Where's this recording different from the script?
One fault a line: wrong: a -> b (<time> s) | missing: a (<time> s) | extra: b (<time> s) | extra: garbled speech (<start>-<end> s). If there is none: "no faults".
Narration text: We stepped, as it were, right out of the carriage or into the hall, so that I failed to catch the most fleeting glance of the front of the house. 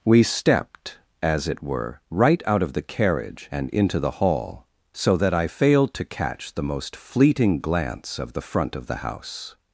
wrong: or -> and (3.5 s)